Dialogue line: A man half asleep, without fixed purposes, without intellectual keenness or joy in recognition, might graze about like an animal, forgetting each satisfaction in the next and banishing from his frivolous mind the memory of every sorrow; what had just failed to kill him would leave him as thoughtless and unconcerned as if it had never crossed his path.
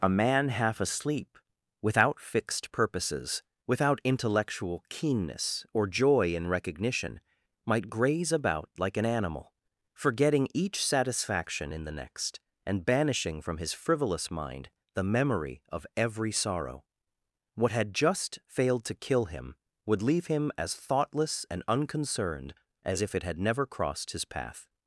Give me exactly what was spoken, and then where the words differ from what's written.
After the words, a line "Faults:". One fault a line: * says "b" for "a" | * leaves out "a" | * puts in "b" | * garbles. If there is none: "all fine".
A man half asleep, without fixed purposes, without intellectual keenness or joy in recognition, might graze about like an animal, forgetting each satisfaction in the next and banishing from his frivolous mind the memory of every sorrow; what had just failed to kill him would leave him as thoughtless and unconcerned as if it had never crossed his path.
Faults:
all fine